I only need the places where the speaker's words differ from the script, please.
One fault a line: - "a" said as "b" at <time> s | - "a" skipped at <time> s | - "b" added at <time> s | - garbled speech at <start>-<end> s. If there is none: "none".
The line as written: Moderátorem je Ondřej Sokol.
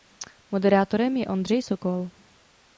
none